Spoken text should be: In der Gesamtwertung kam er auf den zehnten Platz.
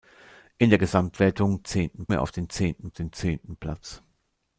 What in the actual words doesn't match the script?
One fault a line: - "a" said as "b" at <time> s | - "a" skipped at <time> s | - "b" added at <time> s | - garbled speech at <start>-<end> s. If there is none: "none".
- "kam" said as "zehnten" at 1.6 s
- "den zehnten" added at 2.9 s